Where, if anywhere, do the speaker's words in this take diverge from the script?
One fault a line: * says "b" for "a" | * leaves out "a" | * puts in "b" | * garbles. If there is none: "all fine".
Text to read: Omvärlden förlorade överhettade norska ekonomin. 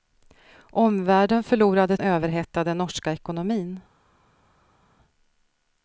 all fine